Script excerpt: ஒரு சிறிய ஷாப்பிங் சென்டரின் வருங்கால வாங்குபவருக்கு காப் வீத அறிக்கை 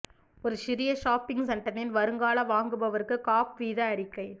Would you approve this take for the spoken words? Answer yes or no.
yes